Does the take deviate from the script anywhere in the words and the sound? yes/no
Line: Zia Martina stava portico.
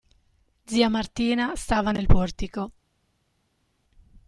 yes